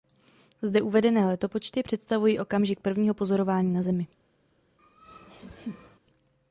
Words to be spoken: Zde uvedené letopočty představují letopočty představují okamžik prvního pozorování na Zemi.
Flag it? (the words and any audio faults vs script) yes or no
yes